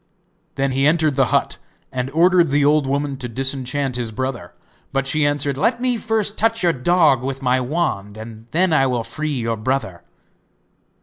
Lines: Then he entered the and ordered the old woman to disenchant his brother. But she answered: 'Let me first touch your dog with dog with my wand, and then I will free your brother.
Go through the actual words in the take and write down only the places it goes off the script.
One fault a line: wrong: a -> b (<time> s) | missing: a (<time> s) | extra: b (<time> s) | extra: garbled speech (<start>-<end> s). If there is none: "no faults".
extra: hut (1.3 s)
missing: dog with (7.4 s)